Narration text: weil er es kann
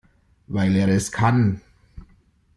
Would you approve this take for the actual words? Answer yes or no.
yes